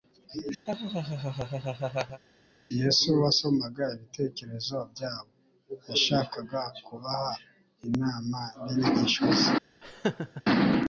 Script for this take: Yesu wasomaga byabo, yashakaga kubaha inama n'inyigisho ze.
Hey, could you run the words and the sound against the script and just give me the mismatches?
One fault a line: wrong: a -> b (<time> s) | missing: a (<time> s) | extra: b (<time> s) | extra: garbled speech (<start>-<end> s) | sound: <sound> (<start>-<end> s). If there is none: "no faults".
sound: laugh (0.7-2.2 s)
extra: ibitekerezo (3.9 s)
sound: laugh (9.8-10.4 s)